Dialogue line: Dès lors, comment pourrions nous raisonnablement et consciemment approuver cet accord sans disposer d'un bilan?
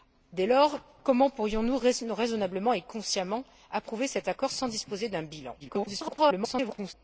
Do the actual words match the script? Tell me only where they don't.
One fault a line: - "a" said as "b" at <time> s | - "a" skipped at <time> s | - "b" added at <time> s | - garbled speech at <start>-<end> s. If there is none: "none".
- garbled speech at 5.6-6.9 s